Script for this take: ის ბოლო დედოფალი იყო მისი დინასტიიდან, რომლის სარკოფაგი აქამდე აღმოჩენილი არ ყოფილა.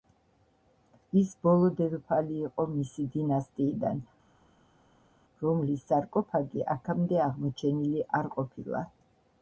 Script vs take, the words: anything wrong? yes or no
no